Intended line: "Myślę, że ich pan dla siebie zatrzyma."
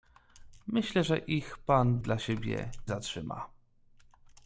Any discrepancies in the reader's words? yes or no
no